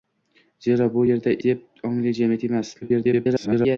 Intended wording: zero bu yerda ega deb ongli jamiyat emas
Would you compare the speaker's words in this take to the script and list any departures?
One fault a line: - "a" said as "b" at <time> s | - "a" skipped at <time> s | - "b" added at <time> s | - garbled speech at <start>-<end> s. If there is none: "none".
- "ega" skipped at 1.3 s
- garbled speech at 2.8-3.8 s